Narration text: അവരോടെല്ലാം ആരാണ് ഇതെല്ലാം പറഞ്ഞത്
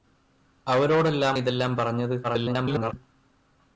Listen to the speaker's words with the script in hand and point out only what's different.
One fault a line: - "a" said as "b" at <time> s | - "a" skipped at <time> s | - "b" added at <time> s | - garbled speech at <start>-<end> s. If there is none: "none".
- "ആരാണ്" skipped at 1.4 s
- garbled speech at 2.2-2.9 s